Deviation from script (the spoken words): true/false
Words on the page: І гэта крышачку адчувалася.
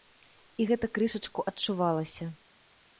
false